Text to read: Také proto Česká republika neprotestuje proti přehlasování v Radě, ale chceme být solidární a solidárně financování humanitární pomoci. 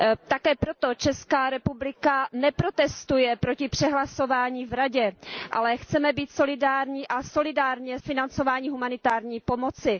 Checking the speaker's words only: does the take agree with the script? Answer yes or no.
yes